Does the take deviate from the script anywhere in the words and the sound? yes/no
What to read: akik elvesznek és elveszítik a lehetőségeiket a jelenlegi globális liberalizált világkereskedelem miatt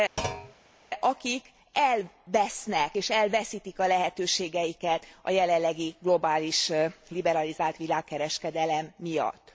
yes